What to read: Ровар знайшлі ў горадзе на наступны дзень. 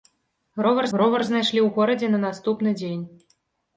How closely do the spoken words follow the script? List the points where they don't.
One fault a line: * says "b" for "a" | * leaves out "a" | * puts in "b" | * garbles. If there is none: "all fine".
* puts in "ровар"